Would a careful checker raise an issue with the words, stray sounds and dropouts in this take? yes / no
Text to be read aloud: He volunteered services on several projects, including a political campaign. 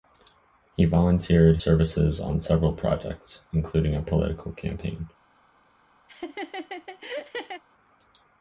yes